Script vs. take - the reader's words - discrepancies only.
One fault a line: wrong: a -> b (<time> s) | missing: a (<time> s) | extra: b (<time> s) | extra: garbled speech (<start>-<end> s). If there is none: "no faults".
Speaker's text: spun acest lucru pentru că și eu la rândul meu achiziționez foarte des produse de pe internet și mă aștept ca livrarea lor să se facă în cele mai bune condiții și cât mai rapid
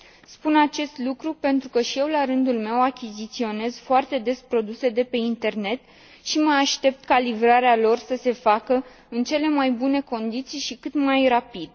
no faults